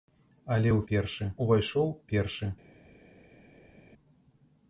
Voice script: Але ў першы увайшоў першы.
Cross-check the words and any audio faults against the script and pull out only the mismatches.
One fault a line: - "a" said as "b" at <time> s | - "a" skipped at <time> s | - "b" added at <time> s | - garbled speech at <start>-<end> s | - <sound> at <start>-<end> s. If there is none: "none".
none